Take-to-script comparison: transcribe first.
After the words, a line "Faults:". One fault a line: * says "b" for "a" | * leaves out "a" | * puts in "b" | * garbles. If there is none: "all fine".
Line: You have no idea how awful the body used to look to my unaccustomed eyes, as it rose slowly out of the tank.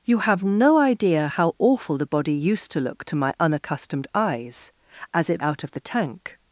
You have no idea how awful the body used to look to my unaccustomed eyes, as it out of the tank.
Faults:
* leaves out "rose slowly"